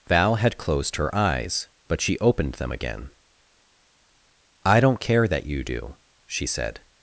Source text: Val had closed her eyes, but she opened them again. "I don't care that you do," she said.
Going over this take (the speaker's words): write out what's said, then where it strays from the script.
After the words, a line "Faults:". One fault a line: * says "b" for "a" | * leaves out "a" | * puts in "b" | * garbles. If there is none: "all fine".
Val had closed her eyes, but she opened them again. "I don't care that you do," she said.
Faults:
all fine